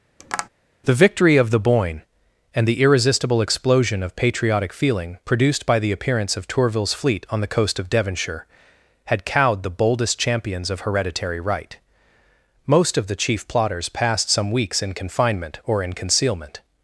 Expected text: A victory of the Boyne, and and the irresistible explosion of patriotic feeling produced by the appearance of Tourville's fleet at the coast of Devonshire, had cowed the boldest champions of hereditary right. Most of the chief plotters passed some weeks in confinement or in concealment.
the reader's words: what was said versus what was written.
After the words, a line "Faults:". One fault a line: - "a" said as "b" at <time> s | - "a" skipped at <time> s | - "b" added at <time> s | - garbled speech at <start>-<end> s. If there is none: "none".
The victory of the Boyne, and the irresistible explosion of patriotic feeling produced by the appearance of Tourville's fleet on the coast of Devonshire, had cowed the boldest champions of hereditary right. Most of the chief plotters passed some weeks in confinement or in concealment.
Faults:
- "A" said as "The" at 0.8 s
- "and" skipped at 2.7 s
- "at" said as "on" at 7.3 s